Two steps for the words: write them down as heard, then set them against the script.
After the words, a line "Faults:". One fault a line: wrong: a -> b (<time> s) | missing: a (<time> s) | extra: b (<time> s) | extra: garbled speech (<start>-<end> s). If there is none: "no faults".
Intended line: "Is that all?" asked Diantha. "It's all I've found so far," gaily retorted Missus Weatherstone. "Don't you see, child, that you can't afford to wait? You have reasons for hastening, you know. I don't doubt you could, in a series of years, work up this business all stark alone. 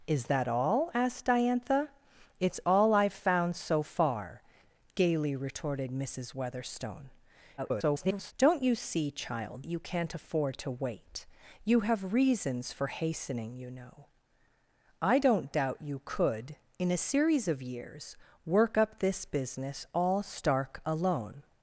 "Is that all?" asked Diantha. "It's all I've found so far," gaily retorted Missus Weatherstone. [garbled] "Don't you see, child, you can't afford to wait? You have reasons for hastening, you know. I don't doubt you could, in a series of years, work up this business all stark alone.
Faults:
extra: garbled speech (7.6-8.3 s)
missing: that (9.6 s)